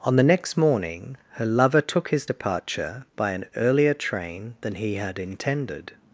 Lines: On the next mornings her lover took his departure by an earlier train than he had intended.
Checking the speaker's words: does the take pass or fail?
fail